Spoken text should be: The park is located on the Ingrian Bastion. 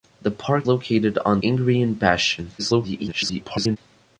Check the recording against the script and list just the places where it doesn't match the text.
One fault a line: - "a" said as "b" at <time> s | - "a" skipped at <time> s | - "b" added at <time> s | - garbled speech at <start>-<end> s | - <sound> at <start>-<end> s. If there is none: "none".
- "is" skipped at 0.7 s
- "the" skipped at 1.4 s
- garbled speech at 2.6-3.8 s